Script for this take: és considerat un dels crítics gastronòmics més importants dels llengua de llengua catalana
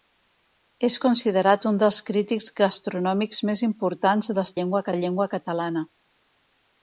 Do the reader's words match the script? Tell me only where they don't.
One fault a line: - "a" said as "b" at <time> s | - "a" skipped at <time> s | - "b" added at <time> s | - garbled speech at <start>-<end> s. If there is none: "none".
none